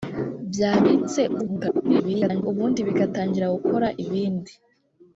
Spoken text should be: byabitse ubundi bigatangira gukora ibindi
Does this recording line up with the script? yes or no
no